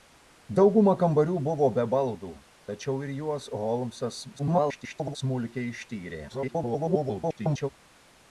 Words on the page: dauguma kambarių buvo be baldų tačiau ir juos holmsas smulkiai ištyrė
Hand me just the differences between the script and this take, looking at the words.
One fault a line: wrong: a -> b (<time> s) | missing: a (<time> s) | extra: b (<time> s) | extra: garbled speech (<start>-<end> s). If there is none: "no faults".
extra: garbled speech (4.4-5.2 s)
extra: garbled speech (6.3-7.7 s)